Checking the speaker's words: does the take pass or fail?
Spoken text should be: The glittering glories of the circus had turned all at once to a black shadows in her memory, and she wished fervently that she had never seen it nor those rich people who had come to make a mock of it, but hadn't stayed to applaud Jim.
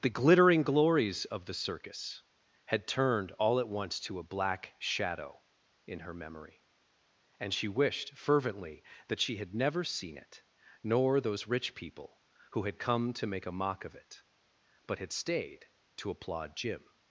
fail